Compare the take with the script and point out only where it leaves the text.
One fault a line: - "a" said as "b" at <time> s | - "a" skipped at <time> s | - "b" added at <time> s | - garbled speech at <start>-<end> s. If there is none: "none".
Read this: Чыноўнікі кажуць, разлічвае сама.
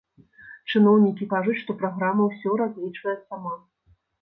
- "што праграма ўсё" added at 1.6 s